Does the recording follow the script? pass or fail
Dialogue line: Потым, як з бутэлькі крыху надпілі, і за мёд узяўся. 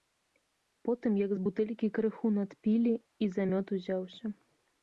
pass